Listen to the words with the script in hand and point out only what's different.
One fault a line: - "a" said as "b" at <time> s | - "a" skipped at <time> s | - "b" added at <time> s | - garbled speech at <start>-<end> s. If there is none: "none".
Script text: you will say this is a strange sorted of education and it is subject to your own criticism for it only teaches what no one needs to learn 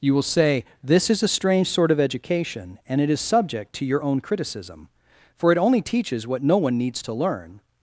- "sorted" said as "sort" at 1.7 s